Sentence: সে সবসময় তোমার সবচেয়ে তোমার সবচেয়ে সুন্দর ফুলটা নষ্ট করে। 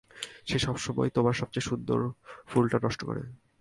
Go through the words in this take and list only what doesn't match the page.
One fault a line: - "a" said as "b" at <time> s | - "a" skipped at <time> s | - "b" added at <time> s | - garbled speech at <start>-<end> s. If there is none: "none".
- "তোমার সবচেয়ে" skipped at 1.7 s